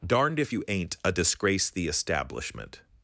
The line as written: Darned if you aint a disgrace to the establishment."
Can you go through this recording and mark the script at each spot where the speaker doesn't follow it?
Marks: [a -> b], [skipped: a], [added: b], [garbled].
Darned if you aint a disgrace [skipped: to] the establishment."